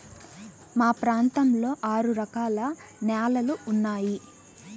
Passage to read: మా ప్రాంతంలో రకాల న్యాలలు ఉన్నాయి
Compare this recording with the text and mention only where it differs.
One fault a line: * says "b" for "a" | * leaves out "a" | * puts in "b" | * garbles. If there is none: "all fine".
* puts in "ఆరు"